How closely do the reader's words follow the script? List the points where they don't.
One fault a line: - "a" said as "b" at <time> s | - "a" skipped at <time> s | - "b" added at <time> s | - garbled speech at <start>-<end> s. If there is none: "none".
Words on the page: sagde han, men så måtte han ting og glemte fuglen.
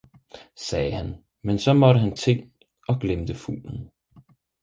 none